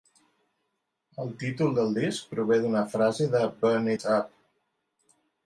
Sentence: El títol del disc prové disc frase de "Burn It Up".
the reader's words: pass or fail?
fail